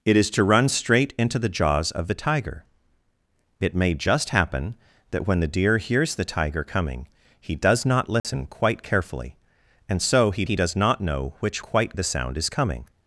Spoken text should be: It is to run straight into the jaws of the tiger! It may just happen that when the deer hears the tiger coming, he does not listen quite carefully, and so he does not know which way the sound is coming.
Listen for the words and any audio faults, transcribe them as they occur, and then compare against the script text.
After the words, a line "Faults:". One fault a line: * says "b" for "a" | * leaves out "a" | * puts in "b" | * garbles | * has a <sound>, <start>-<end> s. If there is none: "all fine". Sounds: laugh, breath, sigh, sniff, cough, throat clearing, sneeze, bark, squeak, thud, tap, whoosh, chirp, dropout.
It is to run straight into the jaws of the tiger! It may just happen that when the deer hears the tiger coming, he does not listen quite carefully, and so he he does not know which quite the sound is coming.
Faults:
* has a dropout, 8.2-8.2 s
* puts in "he"
* says "quite" for "way"